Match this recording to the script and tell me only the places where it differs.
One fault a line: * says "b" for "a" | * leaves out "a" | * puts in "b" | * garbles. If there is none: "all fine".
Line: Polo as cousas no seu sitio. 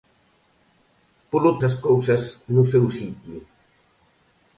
all fine